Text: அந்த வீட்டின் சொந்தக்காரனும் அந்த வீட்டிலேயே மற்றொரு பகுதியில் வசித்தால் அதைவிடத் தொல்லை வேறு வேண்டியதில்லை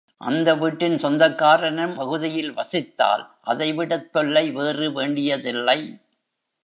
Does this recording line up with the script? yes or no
no